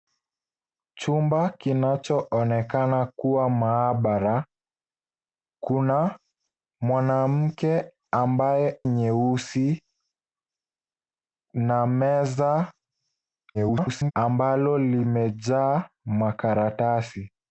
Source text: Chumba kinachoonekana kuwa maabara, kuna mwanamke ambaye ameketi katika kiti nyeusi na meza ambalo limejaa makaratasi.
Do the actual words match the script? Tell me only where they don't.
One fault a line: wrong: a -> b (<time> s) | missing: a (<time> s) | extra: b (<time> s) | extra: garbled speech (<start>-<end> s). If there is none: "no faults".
missing: ameketi katika kiti (8.8 s)
extra: garbled speech (13.5-14.1 s)